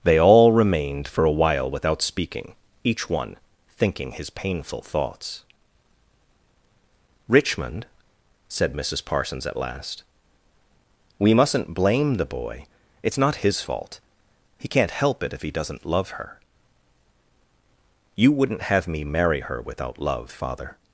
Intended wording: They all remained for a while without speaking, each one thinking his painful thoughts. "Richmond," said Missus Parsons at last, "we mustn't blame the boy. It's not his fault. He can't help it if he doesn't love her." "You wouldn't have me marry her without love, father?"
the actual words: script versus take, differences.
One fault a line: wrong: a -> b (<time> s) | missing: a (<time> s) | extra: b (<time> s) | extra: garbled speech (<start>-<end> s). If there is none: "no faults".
no faults